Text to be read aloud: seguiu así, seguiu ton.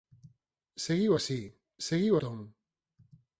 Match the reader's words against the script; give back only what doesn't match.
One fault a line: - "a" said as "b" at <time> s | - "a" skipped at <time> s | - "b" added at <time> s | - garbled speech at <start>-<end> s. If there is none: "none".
none